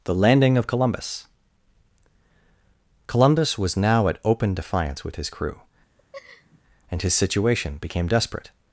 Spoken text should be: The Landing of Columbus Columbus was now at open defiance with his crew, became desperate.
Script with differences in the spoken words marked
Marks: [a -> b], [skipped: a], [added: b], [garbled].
The Landing of Columbus Columbus was now at open defiance with his crew, [added: and his situation] became desperate.